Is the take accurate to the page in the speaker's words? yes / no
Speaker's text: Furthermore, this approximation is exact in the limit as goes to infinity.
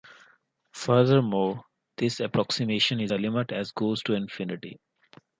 no